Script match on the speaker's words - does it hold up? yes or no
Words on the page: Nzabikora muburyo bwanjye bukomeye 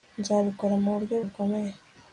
no